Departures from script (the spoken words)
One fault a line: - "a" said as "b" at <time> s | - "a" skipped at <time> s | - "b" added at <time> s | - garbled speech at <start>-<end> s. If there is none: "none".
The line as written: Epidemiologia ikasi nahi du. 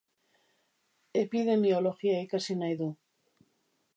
none